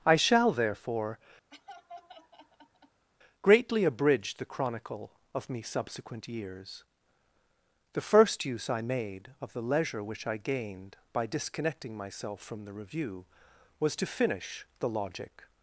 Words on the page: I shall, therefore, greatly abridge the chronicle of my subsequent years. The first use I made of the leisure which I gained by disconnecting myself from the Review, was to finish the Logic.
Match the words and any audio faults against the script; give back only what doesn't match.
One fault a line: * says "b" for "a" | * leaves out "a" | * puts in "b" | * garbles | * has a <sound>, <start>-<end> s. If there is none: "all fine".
* has a laugh, 1.5-3.1 s
* says "me" for "my"